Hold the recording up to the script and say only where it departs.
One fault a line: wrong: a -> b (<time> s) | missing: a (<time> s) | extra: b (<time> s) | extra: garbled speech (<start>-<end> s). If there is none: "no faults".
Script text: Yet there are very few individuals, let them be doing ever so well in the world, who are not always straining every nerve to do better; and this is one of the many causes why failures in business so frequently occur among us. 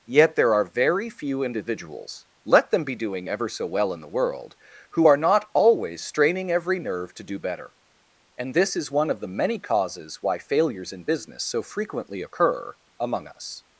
no faults